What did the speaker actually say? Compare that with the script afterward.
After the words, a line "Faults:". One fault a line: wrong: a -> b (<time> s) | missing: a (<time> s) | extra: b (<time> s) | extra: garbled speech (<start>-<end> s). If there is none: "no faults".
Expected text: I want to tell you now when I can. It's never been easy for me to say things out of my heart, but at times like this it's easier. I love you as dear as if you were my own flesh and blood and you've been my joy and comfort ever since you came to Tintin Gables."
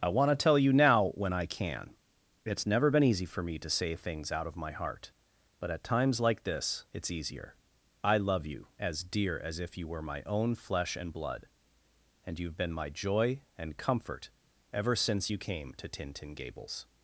I want to tell you now when I can. It's never been easy for me to say things out of my heart, but at times like this it's easier. I love you as dear as if you were my own flesh and blood and you've been my joy and comfort ever since you came to Tintin Gables."
Faults:
no faults